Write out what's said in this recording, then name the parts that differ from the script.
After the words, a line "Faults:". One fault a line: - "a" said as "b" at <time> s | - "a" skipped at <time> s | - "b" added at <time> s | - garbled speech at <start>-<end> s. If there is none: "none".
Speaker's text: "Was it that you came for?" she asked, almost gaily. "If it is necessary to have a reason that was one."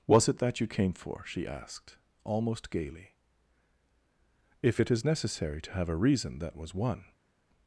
"Was it that you came for?" she asked, almost gaily. "If it is necessary to have a reason that was one."
Faults:
none